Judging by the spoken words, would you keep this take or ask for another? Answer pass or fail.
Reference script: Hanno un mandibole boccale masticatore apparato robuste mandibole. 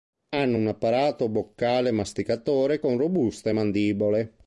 fail